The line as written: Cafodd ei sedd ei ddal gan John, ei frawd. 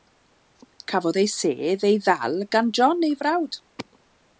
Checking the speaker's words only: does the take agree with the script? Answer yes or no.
yes